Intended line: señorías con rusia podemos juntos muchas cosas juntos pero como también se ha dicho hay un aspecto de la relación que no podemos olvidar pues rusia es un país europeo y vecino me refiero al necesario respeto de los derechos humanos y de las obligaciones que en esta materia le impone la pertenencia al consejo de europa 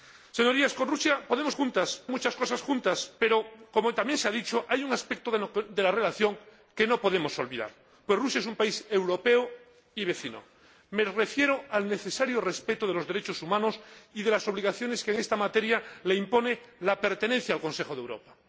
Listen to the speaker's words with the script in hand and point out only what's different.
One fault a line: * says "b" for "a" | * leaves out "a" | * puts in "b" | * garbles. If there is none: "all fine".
all fine